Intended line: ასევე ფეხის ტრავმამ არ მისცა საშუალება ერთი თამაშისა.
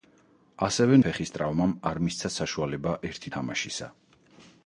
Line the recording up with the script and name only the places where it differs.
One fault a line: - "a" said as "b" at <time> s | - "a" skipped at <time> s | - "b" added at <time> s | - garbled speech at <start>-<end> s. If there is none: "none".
none